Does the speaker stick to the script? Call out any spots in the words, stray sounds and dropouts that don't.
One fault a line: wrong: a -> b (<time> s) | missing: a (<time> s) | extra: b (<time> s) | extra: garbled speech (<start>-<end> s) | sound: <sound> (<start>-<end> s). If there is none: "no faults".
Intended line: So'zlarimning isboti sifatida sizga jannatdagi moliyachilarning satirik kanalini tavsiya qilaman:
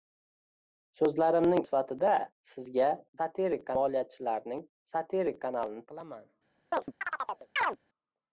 missing: isboti (1.6 s)
wrong: jannatdagi -> satirik (3.2 s)
missing: tavsiya (5.9 s)
sound: chirp (6.7-7.8 s)